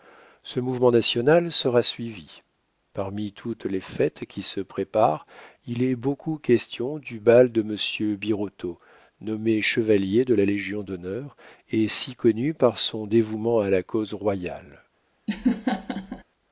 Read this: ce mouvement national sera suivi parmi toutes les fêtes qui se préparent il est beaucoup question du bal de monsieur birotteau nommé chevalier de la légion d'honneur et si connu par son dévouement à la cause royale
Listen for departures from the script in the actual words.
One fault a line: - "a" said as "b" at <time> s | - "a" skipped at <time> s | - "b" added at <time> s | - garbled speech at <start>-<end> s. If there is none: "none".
none